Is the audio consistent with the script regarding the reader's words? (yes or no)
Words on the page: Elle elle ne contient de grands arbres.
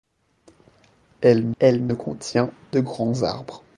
yes